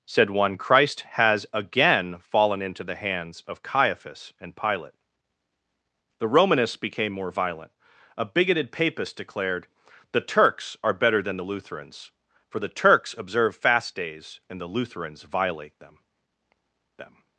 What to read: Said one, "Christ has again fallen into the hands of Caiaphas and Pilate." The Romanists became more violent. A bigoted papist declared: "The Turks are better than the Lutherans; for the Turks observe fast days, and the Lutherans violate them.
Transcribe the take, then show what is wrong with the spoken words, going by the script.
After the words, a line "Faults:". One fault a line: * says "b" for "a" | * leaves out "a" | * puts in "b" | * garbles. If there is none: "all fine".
Said one, "Christ has again fallen into the hands of Caiaphas and Pilate." The Romanists became more violent. A bigoted papist declared: "The Turks are better than the Lutherans; for the Turks observe fast days, and the Lutherans violate them them.
Faults:
* puts in "them"